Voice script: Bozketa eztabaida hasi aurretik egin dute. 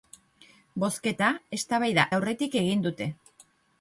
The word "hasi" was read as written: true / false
false